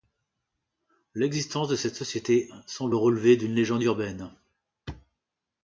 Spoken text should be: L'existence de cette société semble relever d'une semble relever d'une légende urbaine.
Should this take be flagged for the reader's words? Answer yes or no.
yes